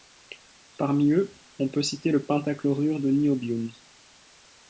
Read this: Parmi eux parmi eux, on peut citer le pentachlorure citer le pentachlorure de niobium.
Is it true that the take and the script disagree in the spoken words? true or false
true